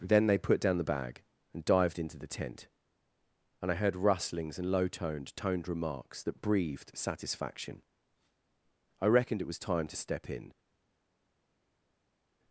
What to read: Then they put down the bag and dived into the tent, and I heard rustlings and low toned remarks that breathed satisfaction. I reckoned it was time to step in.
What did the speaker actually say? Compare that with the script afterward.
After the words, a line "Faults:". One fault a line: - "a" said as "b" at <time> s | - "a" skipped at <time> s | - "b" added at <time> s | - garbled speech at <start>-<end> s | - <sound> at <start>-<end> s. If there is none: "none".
Then they put down the bag and dived into the tent, and I heard rustlings and low toned toned remarks that breathed satisfaction. I reckoned it was time to step in.
Faults:
- "toned" added at 5.3 s